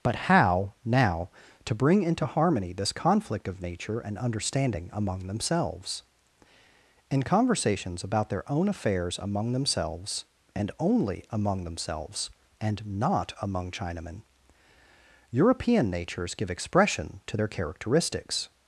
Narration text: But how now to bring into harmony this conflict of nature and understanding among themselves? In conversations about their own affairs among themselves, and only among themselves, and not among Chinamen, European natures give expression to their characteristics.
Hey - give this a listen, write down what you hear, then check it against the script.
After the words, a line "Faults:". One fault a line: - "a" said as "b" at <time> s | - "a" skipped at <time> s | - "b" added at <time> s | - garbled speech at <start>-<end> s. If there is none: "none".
But how now to bring into harmony this conflict of nature and understanding among themselves? In conversations about their own affairs among themselves, and only among themselves, and not among Chinamen, European natures give expression to their characteristics.
Faults:
none